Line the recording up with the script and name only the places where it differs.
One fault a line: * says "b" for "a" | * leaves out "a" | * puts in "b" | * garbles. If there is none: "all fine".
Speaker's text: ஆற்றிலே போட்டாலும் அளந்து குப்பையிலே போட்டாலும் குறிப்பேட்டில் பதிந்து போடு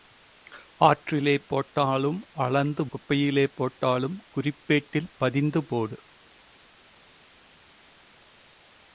all fine